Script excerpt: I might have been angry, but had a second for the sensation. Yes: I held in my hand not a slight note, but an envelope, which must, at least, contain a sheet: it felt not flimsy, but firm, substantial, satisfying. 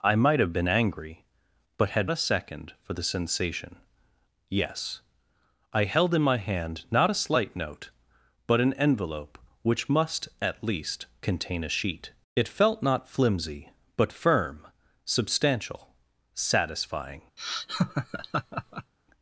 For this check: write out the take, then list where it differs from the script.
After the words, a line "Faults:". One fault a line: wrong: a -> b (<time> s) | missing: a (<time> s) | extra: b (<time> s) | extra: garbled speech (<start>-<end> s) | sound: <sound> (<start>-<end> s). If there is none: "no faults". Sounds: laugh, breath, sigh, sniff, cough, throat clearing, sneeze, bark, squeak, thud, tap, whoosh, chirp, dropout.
I might have been angry, but had a second for the sensation. Yes: I held in my hand not a slight note, but an envelope, which must, at least, contain a sheet: it felt not flimsy, but firm, substantial, satisfying.
Faults:
sound: laugh (17.4-18.9 s)